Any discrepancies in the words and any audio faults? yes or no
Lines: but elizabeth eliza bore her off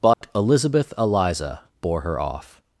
yes